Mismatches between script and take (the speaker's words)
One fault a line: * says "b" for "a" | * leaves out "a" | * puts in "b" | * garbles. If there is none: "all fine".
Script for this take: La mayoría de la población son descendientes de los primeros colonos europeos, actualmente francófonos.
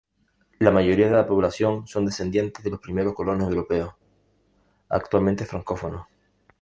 all fine